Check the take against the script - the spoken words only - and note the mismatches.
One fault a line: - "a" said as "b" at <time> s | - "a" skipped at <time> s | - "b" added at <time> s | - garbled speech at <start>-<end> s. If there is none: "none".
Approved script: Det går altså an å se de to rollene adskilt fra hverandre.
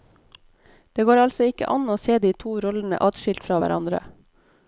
- "ikke" added at 1.5 s